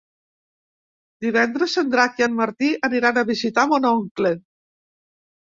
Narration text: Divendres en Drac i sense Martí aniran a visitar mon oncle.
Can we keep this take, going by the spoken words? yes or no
no